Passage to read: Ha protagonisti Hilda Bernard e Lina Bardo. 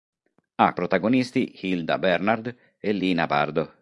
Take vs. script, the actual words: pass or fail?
pass